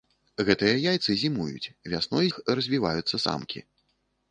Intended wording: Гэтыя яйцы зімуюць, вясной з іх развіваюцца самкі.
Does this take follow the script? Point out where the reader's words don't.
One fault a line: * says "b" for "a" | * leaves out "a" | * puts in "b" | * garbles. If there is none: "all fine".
* leaves out "з"